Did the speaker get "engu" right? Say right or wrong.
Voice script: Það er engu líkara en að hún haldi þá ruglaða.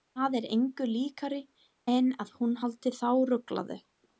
right